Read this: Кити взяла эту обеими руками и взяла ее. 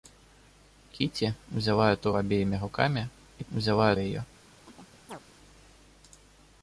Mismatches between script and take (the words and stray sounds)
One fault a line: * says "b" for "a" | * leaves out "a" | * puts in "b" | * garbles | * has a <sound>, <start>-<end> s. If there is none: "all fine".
* has a chirp, 4.7-5.2 s